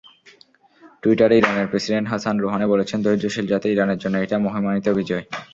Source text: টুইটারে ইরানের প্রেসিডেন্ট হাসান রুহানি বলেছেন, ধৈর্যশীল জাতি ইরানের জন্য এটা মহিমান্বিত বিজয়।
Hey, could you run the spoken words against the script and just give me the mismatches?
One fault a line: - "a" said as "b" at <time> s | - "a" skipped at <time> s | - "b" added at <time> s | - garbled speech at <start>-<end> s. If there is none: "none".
none